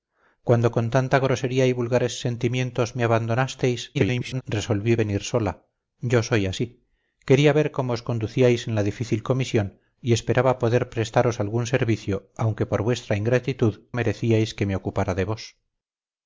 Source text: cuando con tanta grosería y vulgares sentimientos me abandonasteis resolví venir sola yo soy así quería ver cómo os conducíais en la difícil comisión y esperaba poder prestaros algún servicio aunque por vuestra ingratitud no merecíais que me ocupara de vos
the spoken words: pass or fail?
fail